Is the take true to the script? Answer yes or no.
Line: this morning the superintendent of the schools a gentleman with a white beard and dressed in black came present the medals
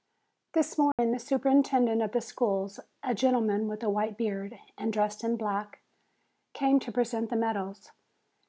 no